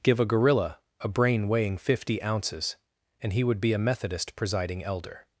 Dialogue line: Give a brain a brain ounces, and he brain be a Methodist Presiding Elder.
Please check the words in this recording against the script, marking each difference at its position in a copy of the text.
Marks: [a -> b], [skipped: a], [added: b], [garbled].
Give a [brain -> gorilla] a brain [added: weighing fifty] ounces, and he [brain -> would] be a Methodist Presiding Elder.